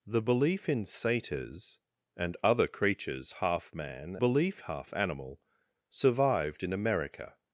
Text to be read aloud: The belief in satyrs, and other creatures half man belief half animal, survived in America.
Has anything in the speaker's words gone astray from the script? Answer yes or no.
no